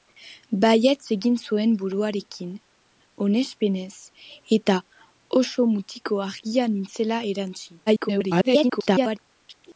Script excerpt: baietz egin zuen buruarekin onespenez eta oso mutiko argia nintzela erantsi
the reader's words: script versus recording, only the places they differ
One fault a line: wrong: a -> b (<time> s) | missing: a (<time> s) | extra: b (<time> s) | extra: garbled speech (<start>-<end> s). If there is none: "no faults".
extra: garbled speech (7.9-9.2 s)